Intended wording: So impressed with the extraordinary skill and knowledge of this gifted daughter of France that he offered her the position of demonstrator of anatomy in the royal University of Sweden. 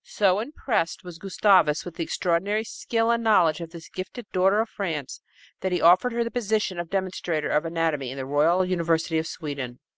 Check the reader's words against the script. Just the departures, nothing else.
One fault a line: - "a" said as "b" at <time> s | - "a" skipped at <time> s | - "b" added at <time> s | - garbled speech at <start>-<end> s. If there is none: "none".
- "was Gustavus" added at 1.0 s